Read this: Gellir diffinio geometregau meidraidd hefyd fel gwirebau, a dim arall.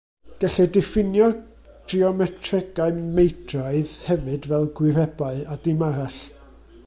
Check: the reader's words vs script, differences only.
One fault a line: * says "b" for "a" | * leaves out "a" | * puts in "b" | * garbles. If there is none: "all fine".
all fine